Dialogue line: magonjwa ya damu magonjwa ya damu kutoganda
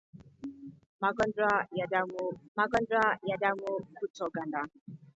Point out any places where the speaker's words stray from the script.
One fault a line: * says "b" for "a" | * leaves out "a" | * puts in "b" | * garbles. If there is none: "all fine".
all fine